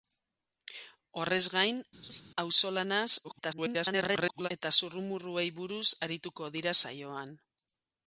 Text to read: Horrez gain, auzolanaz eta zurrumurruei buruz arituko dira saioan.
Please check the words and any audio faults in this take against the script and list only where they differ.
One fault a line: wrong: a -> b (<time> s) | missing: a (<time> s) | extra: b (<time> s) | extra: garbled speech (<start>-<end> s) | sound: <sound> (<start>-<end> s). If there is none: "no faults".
sound: laugh (2.0-2.2 s)
extra: garbled speech (3.2-4.5 s)